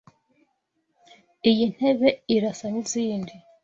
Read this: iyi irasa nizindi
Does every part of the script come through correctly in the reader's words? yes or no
no